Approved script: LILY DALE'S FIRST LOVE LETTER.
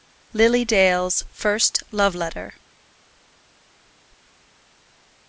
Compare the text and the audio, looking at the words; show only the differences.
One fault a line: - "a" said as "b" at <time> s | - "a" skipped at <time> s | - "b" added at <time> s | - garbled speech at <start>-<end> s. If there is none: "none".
none